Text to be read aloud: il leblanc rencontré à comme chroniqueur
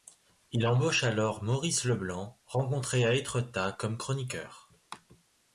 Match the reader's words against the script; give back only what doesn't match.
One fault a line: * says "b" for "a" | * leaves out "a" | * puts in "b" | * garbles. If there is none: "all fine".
* puts in "embauche alors maurice"
* puts in "étretat"